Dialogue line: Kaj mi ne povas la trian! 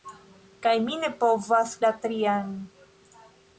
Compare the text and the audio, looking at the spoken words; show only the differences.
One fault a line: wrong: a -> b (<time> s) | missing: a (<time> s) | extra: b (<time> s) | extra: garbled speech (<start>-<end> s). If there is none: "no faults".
no faults